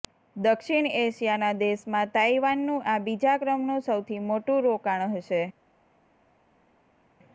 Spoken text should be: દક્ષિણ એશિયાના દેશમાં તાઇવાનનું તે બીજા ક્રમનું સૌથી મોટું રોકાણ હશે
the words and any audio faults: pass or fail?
fail